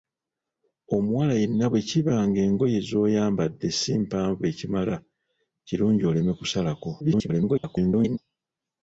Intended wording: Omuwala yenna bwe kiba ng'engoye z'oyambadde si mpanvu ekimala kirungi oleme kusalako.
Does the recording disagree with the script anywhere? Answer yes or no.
yes